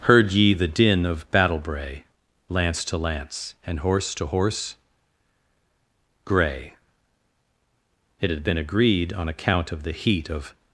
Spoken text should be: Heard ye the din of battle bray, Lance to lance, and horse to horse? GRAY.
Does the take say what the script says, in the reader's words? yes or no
no